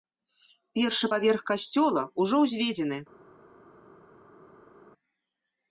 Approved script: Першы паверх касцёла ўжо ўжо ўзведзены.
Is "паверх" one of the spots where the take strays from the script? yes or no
no